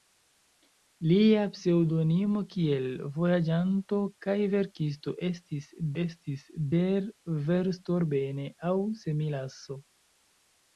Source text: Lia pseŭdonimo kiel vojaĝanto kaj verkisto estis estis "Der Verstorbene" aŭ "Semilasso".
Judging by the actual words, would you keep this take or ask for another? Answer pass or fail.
pass